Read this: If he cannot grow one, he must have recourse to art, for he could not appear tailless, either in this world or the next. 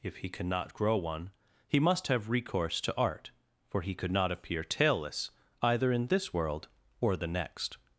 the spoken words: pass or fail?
pass